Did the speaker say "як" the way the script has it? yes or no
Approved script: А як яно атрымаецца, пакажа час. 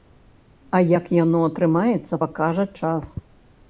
yes